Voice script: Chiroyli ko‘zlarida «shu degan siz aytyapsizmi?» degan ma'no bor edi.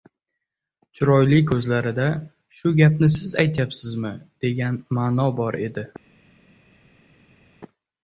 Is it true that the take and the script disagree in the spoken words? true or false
true